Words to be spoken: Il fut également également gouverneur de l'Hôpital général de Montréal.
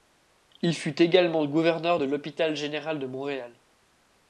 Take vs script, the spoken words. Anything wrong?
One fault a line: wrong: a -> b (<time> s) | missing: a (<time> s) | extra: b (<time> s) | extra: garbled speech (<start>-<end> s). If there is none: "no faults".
missing: également (1.4 s)